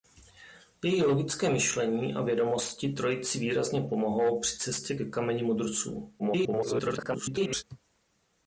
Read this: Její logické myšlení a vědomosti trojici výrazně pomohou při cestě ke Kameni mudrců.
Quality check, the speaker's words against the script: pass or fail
fail